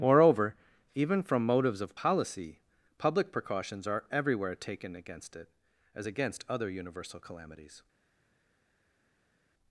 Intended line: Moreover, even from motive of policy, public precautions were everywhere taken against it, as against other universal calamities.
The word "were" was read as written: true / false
false